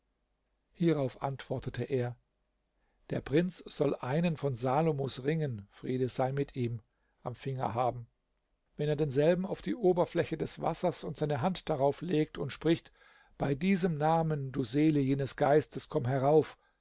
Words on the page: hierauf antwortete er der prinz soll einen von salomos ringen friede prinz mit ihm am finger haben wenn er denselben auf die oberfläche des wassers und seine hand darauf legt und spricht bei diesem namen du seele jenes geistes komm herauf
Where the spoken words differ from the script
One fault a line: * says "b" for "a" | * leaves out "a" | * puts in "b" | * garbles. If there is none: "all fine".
* says "sei" for "prinz"